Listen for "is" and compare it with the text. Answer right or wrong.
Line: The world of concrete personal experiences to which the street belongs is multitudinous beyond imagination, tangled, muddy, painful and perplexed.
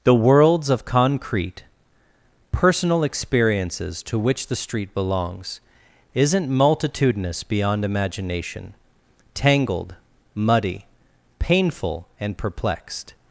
wrong